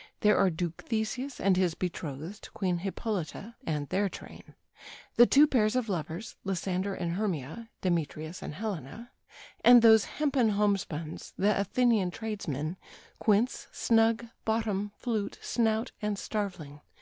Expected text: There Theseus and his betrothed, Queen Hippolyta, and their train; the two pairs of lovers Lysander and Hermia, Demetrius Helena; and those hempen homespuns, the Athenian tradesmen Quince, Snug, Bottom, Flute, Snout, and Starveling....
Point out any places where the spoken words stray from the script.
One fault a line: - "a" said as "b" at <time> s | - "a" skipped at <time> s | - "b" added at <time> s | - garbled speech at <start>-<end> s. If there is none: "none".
- "are Duke" added at 0.3 s
- "and" added at 8.4 s